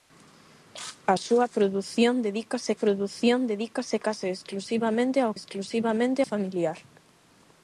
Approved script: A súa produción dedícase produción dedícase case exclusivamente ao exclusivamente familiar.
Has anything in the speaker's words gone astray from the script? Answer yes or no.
no